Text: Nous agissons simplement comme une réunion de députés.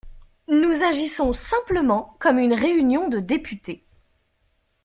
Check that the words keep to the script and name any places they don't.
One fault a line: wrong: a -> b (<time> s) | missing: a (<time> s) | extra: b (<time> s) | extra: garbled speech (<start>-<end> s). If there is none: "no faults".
no faults